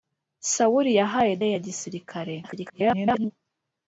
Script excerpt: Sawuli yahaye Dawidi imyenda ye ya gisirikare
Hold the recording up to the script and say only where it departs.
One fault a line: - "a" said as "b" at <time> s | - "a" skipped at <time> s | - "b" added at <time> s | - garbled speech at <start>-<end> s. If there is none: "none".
- "Dawidi imyenda" skipped at 1.3 s
- garbled speech at 2.4-3.3 s